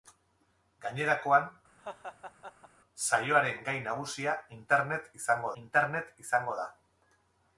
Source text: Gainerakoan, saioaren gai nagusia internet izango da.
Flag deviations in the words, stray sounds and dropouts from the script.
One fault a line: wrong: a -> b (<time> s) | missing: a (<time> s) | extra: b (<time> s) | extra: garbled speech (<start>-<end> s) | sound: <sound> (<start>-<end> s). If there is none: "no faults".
sound: laugh (1.8-2.7 s)
extra: internet izango (5.6 s)